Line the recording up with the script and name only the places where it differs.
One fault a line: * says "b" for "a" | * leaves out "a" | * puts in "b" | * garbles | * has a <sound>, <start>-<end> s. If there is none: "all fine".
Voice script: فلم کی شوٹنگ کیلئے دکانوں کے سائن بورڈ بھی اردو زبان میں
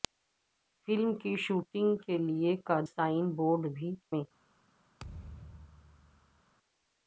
* leaves out "دکانوں کے"
* leaves out "اردو زبان"
* has a thud, 5.0-6.4 s